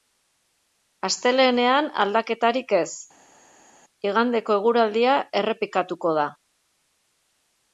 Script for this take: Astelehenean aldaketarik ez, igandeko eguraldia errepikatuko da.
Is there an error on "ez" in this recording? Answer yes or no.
no